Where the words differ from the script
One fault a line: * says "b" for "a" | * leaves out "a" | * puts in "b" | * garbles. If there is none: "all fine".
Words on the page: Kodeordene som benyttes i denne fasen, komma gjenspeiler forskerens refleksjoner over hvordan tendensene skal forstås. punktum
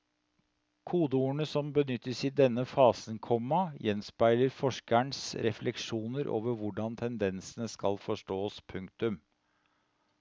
all fine